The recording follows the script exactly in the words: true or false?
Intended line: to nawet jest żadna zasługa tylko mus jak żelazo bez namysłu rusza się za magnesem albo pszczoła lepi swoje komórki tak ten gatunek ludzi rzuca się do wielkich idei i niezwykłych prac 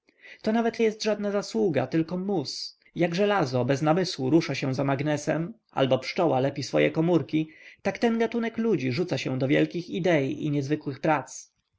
true